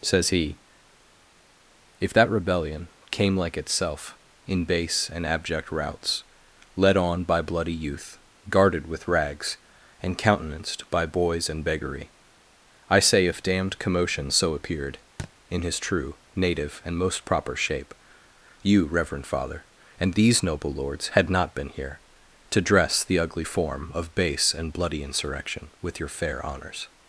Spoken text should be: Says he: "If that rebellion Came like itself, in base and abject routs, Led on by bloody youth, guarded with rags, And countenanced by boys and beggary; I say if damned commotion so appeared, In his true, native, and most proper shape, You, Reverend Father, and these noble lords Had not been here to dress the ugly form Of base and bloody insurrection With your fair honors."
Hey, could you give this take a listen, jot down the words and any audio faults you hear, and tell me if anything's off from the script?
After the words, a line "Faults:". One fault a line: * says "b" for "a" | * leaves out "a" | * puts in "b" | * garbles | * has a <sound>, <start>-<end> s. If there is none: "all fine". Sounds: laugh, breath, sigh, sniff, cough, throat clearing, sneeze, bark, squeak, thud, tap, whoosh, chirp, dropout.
Says he: "If that rebellion Came like itself, in base and abject routs, Led on by bloody youth, guarded with rags, And countenanced by boys and beggary; I say if damned commotion so appeared, In his true, native, and most proper shape, You, Reverend Father, and these noble lords Had not been here to dress the ugly form Of base and bloody insurrection With your fair honors."
Faults:
* has a thud, 15.2-15.3 s